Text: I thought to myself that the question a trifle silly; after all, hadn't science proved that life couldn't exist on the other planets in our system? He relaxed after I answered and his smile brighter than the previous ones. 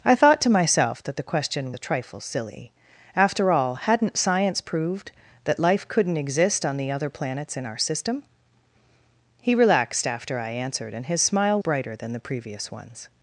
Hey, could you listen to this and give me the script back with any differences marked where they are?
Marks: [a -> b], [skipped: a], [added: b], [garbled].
I thought to myself that the question a trifle silly; after all, hadn't science proved that life couldn't exist on the other planets in our system? He relaxed after I answered and his smile brighter than the previous ones.